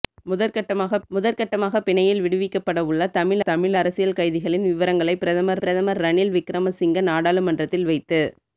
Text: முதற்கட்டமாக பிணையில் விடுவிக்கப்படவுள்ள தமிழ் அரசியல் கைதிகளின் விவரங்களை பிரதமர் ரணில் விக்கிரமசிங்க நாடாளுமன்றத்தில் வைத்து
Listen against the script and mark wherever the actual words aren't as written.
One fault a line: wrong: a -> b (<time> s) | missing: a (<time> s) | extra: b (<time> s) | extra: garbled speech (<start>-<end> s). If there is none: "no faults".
extra: முதற்கட்டமாக (1.1 s)
extra: தமிழ் (3.4 s)
extra: பிரதமர் (5.6 s)